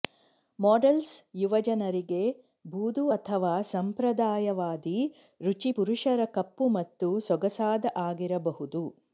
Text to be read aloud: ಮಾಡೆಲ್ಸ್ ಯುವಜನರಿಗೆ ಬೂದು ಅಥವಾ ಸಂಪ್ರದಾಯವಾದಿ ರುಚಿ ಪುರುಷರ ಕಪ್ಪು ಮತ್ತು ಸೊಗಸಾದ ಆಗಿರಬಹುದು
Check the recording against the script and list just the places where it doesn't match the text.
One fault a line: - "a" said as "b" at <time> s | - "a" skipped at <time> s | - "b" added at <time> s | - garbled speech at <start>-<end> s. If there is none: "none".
none